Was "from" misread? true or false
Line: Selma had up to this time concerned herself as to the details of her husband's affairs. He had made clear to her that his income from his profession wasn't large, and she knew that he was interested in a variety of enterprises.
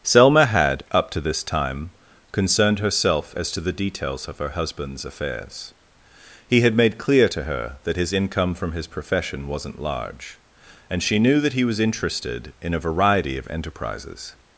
false